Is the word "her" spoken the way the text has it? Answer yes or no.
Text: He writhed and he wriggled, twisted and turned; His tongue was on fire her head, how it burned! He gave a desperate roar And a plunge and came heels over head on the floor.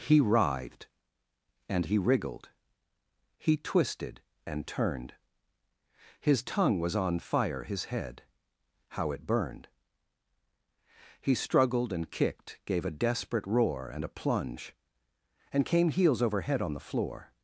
no